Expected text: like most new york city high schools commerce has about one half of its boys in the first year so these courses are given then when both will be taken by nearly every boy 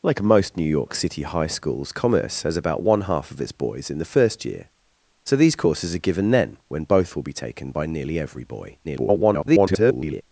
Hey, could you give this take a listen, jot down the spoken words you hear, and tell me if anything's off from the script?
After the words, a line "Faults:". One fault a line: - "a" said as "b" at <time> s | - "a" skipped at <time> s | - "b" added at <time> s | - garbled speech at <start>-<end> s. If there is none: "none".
like most new york city high schools commerce has about one half of its boys in the first year so these courses are given then when both will be taken by nearly every boy [garbled]
Faults:
- garbled speech at 8.8-10.2 s